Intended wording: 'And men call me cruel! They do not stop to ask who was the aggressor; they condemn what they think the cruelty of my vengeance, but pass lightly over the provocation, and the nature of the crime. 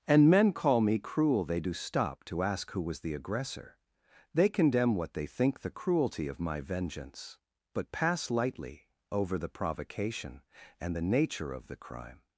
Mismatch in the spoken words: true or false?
true